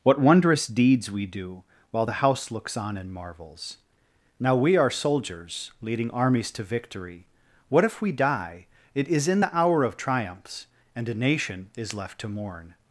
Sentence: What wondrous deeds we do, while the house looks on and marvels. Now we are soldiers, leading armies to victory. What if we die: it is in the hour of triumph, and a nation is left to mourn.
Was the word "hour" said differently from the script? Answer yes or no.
no